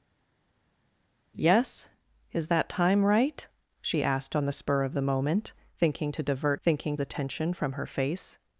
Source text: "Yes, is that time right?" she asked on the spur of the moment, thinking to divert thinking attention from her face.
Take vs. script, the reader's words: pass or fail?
pass